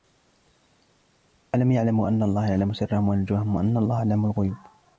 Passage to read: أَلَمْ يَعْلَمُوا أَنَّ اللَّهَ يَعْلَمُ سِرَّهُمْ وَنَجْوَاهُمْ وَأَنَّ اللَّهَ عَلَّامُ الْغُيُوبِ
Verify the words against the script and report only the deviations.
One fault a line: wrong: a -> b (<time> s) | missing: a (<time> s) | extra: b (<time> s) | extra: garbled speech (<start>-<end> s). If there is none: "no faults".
no faults